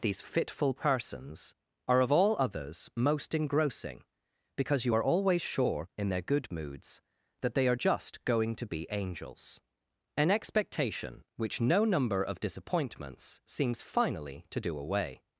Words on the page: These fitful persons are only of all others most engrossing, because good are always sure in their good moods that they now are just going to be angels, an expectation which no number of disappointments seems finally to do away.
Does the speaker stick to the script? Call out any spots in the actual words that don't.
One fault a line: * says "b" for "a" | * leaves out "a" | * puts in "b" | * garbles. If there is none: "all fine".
* leaves out "only"
* says "you" for "good"
* leaves out "now"